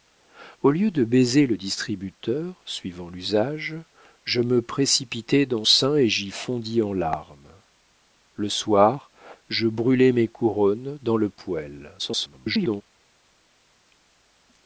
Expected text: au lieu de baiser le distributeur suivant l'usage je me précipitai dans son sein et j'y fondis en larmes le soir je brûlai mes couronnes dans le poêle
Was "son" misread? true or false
true